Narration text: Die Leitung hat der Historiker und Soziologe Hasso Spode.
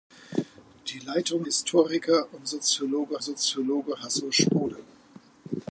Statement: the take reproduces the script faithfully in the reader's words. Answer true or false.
false